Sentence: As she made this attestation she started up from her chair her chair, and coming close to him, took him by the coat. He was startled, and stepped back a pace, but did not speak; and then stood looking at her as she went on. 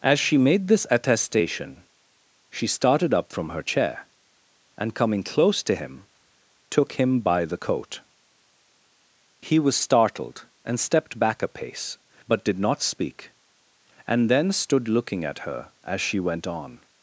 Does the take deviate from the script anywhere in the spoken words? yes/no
yes